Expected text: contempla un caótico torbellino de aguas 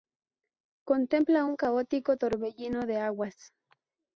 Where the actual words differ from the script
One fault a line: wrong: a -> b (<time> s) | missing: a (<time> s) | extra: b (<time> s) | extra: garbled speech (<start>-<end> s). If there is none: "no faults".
no faults